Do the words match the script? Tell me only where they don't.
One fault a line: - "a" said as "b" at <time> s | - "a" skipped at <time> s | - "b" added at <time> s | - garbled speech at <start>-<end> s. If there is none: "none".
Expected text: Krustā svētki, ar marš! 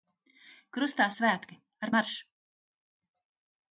none